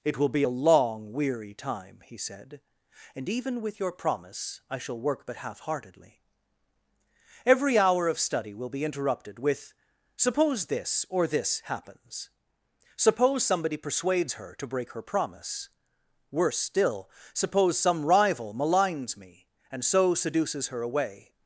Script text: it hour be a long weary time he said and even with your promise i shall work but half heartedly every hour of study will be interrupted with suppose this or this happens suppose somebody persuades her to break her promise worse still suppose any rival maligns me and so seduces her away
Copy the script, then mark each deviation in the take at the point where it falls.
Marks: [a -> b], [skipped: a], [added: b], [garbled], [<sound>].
it [hour -> will] be a long weary time he said and even with your promise i shall work but half heartedly every hour of study will be interrupted with suppose this or this happens suppose somebody persuades her to break her promise worse still suppose [any -> some] rival maligns me and so seduces her away